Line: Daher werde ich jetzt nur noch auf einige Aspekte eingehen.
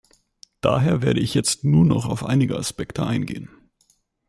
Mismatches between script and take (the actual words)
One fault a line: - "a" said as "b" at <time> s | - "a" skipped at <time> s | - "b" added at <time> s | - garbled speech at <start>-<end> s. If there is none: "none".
none